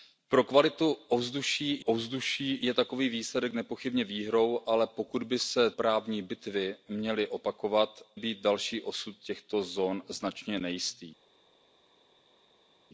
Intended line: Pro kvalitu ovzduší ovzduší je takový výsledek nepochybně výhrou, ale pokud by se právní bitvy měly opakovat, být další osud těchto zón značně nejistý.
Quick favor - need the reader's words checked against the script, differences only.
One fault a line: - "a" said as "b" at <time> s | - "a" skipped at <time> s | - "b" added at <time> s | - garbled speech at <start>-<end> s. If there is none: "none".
none